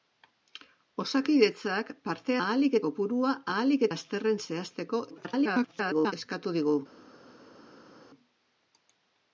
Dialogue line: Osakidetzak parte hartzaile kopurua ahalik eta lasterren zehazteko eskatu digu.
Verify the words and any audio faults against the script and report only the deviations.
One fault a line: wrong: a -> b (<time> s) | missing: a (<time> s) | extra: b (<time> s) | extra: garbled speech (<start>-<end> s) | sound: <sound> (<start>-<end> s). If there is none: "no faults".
wrong: hartzaile -> ahalik (2.5 s)
missing: eta (3.9 s)
extra: garbled speech (5.1-6.1 s)